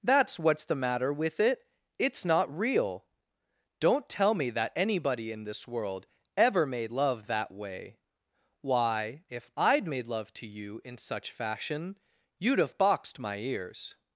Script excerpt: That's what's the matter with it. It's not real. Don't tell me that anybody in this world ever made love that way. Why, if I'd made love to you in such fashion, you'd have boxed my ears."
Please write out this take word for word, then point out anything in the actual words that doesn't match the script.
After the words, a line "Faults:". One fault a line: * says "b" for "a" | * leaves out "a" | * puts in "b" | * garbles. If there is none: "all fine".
That's what's the matter with it. It's not real. Don't tell me that anybody in this world ever made love that way. Why, if I'd made love to you in such fashion, you'd have boxed my ears."
Faults:
all fine